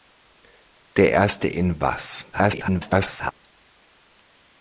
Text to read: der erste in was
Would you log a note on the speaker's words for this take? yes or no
yes